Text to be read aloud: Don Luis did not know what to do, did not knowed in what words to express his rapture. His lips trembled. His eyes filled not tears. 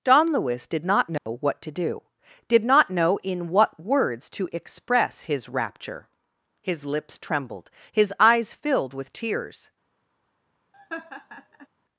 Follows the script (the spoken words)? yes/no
no